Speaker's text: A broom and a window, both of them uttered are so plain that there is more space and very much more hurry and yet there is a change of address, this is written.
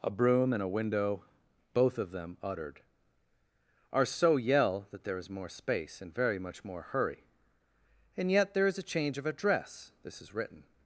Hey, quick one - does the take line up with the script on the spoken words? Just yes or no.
no